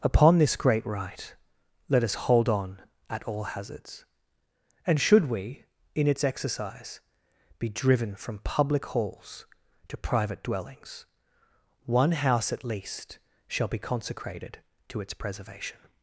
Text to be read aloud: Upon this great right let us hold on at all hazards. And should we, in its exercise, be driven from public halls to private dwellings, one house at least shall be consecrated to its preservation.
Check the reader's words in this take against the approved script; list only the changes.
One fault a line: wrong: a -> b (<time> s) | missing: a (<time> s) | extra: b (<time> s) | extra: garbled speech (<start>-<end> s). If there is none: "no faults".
no faults